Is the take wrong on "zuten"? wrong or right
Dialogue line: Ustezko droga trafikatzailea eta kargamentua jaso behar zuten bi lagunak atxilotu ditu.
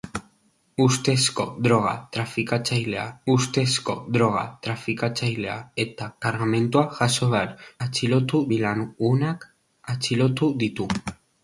wrong